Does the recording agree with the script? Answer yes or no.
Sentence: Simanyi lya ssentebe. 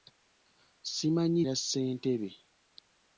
yes